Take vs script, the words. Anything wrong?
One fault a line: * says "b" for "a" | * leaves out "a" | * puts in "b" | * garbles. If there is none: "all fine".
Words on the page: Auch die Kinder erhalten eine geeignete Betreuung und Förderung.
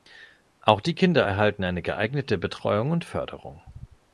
all fine